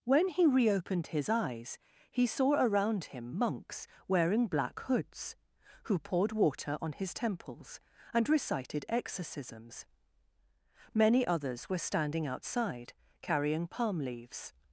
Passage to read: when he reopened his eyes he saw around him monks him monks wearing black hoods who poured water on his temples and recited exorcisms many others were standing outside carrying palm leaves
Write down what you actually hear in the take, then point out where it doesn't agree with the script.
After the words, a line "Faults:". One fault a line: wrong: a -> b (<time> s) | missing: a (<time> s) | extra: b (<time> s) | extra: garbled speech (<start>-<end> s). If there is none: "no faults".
when he reopened his eyes he saw around him monks wearing black hoods who poured water on his temples and recited exorcisms many others were standing outside carrying palm leaves
Faults:
missing: him monks (3.8 s)